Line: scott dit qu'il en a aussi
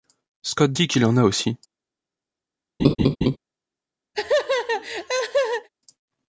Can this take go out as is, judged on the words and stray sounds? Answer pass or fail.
fail